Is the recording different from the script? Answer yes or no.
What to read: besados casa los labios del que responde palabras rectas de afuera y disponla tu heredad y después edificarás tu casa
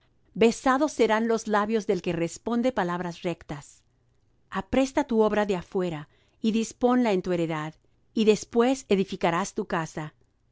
yes